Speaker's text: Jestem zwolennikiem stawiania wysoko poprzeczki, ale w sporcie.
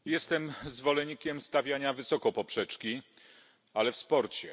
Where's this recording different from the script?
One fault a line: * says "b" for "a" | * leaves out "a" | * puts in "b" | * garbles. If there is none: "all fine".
all fine